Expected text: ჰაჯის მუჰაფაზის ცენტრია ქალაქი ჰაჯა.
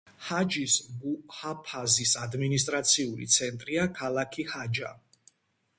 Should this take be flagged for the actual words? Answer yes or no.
yes